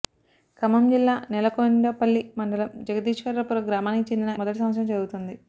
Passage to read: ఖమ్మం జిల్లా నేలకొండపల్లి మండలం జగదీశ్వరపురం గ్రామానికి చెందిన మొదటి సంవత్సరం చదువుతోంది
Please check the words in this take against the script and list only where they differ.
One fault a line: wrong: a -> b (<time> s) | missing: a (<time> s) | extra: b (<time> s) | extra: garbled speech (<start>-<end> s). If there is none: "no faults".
no faults